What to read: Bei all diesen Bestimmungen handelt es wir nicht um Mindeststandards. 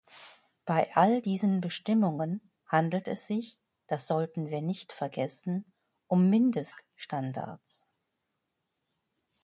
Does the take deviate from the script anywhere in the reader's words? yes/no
yes